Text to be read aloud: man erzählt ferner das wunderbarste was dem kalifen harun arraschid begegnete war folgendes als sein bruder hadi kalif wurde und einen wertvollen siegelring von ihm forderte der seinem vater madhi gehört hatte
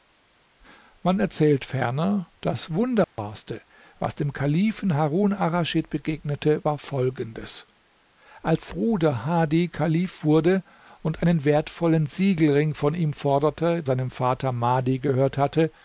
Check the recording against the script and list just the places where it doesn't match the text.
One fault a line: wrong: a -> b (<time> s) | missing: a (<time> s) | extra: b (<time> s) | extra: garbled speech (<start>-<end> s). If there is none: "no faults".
missing: sein (8.7 s)
missing: der (13.8 s)